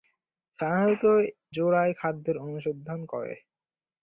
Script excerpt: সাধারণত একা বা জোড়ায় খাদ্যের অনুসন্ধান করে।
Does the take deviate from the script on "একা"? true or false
true